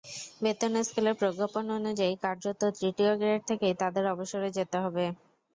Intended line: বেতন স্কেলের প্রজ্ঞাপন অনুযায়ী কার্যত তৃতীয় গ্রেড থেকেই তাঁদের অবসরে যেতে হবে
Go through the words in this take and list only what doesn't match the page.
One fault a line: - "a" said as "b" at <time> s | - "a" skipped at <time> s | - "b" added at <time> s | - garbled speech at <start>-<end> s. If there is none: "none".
none